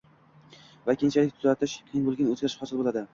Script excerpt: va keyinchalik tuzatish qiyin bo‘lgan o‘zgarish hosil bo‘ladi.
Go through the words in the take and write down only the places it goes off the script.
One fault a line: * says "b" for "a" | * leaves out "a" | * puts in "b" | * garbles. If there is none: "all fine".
all fine